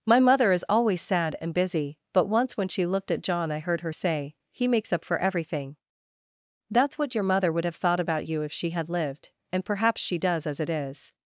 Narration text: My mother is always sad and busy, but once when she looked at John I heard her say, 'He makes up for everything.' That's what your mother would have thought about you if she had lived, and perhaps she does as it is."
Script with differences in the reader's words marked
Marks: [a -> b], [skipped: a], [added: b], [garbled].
My mother is always sad and busy, but once when she looked at John I heard her say, 'He makes up for everything.' That's what your mother would have thought about you if she had lived, and perhaps she does as it is."